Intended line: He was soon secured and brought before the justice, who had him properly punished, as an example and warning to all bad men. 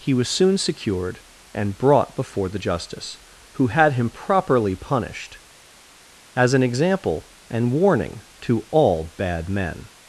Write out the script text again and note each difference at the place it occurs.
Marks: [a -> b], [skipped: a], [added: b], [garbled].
He was soon secured and brought before the justice, who had him properly punished, as an example and warning to all bad men.